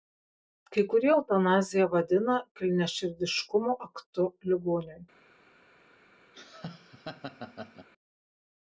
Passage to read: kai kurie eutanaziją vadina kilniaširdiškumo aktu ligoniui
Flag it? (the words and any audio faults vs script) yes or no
yes